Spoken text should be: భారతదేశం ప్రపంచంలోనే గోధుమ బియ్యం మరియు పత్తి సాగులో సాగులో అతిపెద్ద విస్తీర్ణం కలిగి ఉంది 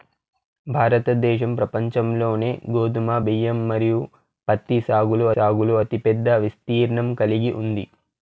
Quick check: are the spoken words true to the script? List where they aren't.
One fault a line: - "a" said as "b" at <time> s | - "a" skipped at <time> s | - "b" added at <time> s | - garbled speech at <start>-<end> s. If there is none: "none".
none